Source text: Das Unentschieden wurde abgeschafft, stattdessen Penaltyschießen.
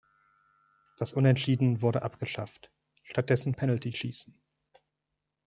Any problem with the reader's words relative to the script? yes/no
no